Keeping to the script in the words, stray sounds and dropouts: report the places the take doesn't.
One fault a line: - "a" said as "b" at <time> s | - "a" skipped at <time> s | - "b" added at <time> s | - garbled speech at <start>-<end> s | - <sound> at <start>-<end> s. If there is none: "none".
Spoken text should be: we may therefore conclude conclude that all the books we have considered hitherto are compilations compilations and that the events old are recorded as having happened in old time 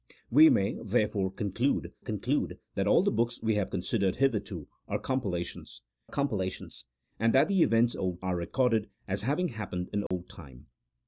- dropout at 10.1-10.1 s